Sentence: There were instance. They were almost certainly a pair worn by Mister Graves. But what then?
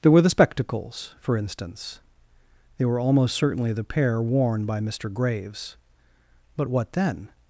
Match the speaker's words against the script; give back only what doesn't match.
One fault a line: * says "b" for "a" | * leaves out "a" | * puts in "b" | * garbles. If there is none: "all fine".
* puts in "the spectacles for"
* says "the" for "a"